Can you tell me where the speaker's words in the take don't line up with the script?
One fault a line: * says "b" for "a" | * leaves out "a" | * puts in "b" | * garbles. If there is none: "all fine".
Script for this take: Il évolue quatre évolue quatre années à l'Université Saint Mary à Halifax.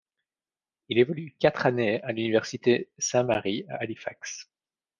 * leaves out "évolue quatre"